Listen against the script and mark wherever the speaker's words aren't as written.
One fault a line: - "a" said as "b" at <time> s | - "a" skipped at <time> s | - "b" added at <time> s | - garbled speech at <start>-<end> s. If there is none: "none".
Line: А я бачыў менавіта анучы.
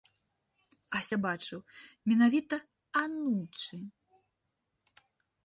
none